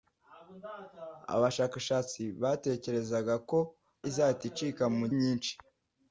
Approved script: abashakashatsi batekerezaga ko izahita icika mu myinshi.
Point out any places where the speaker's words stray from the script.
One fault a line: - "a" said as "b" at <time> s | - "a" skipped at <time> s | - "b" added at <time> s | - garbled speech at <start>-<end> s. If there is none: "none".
none